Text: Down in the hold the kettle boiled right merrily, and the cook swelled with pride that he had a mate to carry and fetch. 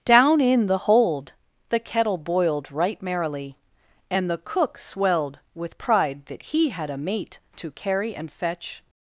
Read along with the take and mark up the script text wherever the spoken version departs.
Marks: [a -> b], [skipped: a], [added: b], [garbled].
Down in the hold the kettle boiled right merrily, and the cook swelled with pride that he had a mate to carry and fetch.